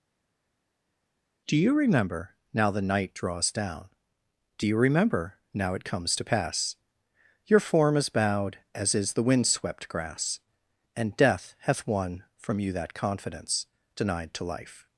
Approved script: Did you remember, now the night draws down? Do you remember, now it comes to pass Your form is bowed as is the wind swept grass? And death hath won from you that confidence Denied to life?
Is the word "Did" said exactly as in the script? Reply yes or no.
no